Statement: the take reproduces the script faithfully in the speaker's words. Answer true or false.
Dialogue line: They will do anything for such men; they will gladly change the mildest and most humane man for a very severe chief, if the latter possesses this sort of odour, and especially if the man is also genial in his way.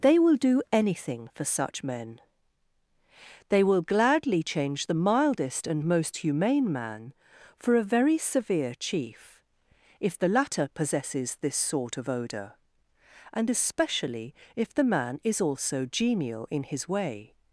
true